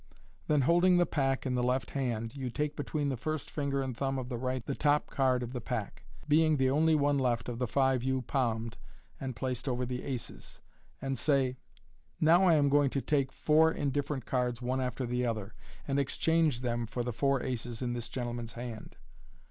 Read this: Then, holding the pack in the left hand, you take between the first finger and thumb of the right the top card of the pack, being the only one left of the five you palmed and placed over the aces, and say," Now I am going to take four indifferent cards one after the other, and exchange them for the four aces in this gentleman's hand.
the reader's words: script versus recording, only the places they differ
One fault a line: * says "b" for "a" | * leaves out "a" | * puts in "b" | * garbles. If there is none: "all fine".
all fine